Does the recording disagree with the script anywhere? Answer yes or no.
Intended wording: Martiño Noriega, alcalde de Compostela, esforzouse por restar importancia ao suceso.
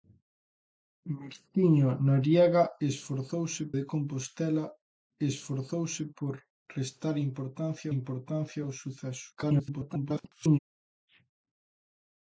yes